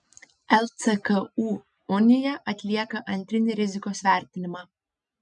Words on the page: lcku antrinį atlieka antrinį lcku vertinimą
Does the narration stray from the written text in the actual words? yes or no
yes